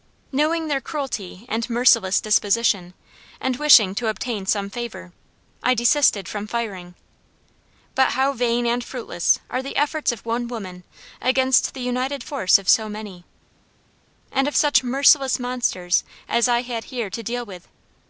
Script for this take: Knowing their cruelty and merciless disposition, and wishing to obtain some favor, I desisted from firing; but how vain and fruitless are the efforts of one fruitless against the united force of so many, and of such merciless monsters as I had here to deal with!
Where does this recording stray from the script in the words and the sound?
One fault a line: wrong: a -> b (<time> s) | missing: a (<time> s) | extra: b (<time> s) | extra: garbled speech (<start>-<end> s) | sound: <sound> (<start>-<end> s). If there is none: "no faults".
wrong: fruitless -> woman (10.5 s)